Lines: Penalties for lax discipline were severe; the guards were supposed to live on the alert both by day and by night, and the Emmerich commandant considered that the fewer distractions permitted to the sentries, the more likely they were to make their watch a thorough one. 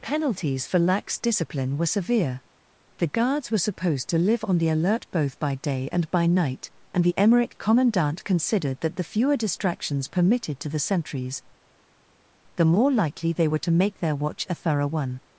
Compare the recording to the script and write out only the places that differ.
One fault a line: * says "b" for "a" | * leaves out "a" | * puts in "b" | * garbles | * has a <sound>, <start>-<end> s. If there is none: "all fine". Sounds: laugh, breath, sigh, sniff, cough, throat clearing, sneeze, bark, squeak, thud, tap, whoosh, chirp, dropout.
all fine